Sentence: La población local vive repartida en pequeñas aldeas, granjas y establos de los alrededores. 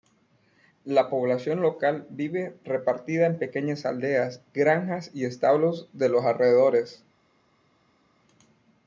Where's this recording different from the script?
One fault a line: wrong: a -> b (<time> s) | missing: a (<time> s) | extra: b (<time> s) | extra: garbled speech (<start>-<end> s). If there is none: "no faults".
no faults